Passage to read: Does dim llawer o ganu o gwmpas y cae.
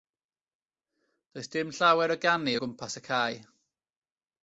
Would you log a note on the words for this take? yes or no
no